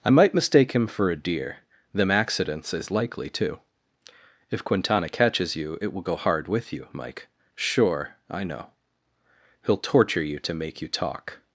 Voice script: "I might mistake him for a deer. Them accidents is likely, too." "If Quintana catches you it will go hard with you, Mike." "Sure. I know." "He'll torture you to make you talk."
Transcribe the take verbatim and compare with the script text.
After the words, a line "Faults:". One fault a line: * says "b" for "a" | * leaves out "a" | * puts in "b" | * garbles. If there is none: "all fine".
"I might mistake him for a deer. Them accidents is likely, too." "If Quintana catches you it will go hard with you, Mike." "Sure. I know." "He'll torture you to make you talk."
Faults:
all fine